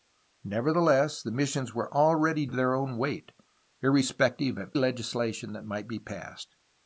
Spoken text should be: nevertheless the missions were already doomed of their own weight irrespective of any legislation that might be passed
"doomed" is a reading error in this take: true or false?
true